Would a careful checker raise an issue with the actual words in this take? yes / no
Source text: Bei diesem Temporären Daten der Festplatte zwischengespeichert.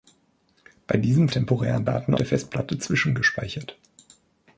no